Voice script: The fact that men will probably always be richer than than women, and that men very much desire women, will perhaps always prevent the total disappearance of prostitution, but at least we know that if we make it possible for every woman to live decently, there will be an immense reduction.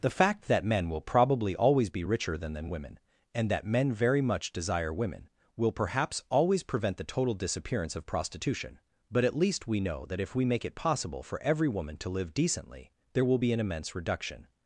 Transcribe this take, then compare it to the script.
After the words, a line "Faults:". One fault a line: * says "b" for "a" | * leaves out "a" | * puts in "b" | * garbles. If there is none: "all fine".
The fact that men will probably always be richer than than women, and that men very much desire women, will perhaps always prevent the total disappearance of prostitution, but at least we know that if we make it possible for every woman to live decently, there will be an immense reduction.
Faults:
all fine